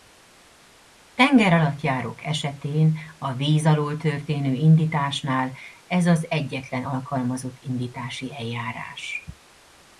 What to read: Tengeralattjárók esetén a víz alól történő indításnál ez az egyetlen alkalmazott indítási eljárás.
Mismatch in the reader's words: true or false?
false